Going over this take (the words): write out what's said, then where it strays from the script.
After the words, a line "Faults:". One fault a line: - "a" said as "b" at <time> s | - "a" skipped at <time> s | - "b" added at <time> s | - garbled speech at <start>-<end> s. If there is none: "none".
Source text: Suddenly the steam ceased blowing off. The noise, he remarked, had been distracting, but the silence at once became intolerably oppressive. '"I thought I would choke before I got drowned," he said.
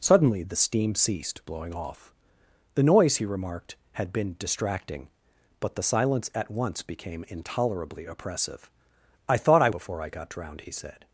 Suddenly the steam ceased blowing off. The noise, he remarked, had been distracting, but the silence at once became intolerably oppressive. '"I thought I before I got drowned," he said.
Faults:
- "would choke" skipped at 9.7 s